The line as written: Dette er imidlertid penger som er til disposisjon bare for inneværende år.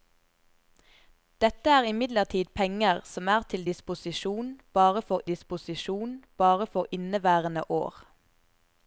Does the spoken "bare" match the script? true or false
true